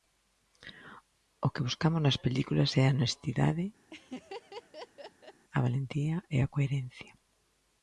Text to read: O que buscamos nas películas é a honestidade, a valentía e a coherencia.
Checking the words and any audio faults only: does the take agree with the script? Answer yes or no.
no